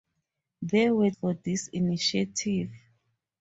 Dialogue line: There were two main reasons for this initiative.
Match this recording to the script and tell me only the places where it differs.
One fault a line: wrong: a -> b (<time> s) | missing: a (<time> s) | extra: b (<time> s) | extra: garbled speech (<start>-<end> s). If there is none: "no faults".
missing: two main reasons (1.1 s)